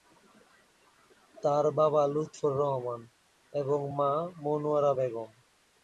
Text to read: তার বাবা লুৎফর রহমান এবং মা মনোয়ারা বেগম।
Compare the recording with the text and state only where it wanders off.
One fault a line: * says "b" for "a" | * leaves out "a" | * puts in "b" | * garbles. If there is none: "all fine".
all fine